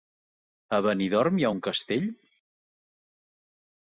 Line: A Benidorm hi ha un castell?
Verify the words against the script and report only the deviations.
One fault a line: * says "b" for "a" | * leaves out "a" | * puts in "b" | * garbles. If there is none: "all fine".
all fine